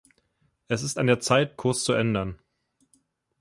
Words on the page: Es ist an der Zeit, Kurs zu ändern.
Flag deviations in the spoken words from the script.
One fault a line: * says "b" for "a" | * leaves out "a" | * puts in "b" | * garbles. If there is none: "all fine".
all fine